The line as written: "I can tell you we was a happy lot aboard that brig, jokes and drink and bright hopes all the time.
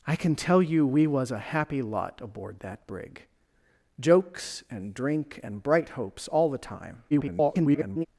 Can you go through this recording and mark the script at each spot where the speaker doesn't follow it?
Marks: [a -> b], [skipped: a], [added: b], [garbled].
"I can tell you we was a happy lot aboard that brig, jokes and drink and bright hopes all the time. [garbled]